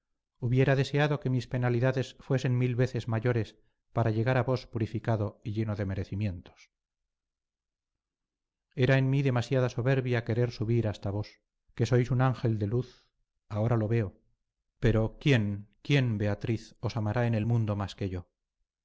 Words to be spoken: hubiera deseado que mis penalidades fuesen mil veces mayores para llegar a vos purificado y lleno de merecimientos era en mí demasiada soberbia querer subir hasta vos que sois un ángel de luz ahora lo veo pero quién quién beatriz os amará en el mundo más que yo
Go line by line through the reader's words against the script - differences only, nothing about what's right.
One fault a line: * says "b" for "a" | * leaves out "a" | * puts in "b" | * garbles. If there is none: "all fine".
all fine